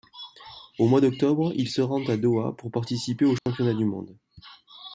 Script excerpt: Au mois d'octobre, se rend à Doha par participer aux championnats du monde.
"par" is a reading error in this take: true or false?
true